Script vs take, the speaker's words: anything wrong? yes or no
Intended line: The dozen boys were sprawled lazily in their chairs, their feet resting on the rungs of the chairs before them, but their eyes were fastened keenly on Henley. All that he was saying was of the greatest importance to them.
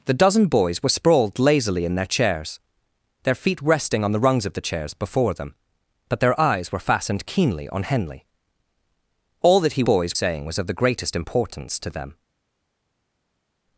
yes